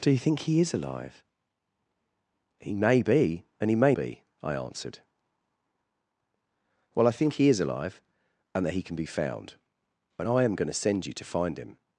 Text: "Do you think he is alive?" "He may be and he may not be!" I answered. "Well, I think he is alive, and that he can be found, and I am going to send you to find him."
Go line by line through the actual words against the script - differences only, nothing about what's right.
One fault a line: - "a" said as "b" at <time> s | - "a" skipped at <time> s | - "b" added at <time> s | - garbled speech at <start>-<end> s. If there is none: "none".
- "not" skipped at 4.0 s